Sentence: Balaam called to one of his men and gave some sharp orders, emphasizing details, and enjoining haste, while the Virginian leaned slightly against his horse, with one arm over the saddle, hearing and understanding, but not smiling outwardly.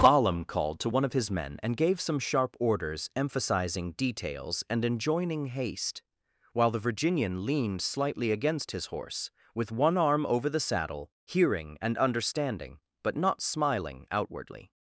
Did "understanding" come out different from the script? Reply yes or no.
no